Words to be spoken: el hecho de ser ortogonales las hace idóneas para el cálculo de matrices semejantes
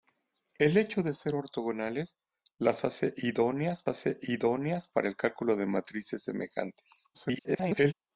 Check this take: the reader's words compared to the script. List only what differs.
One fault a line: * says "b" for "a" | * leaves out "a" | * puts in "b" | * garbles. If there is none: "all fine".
* puts in "hace idóneas"
* garbles